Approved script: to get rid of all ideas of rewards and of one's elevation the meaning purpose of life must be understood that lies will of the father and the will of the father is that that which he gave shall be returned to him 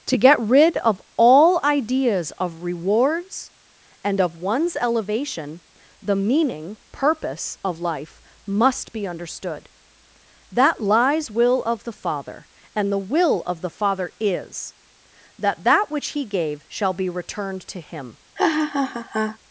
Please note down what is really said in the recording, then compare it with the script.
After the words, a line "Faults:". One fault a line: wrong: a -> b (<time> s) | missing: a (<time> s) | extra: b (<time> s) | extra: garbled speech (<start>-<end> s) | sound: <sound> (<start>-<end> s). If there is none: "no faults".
to get rid of all ideas of rewards and of one's elevation the meaning purpose of life must be understood that lies will of the father and the will of the father is that that which he gave shall be returned to him
Faults:
sound: laugh (18.4-19.4 s)